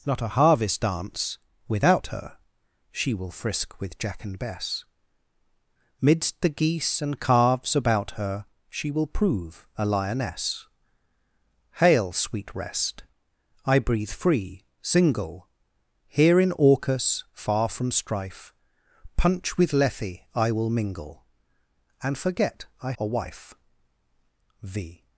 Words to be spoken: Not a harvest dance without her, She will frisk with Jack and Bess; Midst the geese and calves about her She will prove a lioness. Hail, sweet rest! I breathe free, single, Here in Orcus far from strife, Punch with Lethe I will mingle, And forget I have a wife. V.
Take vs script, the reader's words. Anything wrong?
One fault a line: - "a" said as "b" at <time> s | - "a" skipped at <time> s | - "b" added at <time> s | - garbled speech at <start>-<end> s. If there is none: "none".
- "have" skipped at 22.9 s